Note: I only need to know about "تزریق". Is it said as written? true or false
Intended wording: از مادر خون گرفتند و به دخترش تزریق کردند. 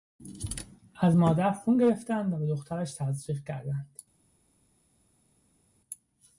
true